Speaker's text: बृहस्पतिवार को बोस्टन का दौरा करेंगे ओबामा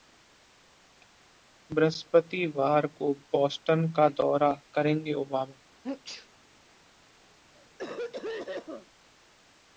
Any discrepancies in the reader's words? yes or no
no